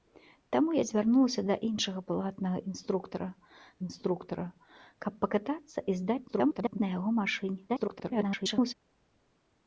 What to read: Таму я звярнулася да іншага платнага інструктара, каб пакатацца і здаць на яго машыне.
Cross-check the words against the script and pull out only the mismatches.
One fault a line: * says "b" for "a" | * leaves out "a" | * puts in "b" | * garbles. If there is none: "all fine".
* puts in "інструктара"
* garbles
* garbles